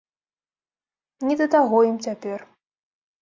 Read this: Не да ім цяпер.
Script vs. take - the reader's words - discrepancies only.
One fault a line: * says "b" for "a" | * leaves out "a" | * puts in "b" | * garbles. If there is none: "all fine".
* puts in "таго"